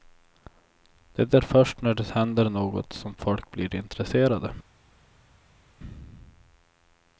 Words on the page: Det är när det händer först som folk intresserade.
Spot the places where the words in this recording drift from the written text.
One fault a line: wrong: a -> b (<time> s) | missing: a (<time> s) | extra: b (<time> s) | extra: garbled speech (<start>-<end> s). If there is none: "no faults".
extra: först (1.4 s)
wrong: först -> något (2.5 s)
extra: blir (3.5 s)